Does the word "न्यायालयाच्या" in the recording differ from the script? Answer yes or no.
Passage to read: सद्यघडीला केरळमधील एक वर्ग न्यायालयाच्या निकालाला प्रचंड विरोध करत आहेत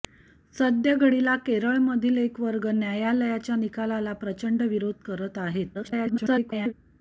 no